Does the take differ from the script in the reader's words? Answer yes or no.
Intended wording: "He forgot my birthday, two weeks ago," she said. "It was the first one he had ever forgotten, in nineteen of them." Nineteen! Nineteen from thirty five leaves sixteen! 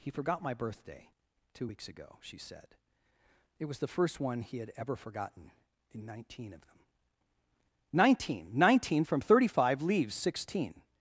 no